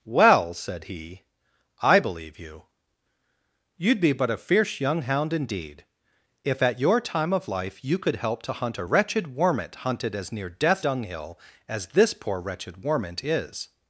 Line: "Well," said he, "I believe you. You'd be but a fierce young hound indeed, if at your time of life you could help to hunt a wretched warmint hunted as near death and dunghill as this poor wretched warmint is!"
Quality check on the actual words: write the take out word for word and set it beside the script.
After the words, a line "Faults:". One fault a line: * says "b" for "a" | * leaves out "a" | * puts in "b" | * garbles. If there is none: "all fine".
"Well," said he, "I believe you. You'd be but a fierce young hound indeed, if at your time of life you could help to hunt a wretched warmint hunted as near death dunghill as this poor wretched warmint is!"
Faults:
* leaves out "and"